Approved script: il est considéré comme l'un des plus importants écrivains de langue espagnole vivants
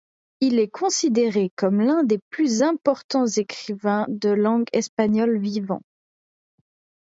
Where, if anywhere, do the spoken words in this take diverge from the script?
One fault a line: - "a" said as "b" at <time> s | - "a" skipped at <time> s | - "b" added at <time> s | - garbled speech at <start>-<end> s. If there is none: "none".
none